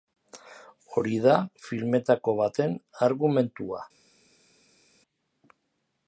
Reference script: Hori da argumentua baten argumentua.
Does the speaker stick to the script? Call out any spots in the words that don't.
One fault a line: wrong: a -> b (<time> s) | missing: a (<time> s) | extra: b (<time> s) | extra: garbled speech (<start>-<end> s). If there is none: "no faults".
wrong: argumentua -> filmetako (1.6 s)